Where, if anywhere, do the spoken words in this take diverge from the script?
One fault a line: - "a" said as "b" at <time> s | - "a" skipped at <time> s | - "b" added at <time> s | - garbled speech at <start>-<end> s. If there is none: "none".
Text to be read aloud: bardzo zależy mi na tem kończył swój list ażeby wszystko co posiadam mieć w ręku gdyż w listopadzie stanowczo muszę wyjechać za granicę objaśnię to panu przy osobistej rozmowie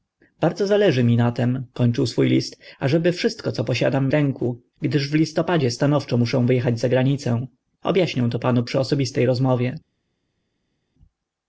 - "mieć" skipped at 4.1 s